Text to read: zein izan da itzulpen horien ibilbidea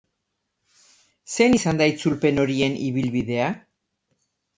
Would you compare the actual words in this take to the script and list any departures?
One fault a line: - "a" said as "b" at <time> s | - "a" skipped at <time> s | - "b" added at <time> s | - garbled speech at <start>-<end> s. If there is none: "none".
none